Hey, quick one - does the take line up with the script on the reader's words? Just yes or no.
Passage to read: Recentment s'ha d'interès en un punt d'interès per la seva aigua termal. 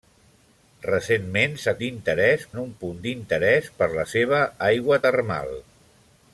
yes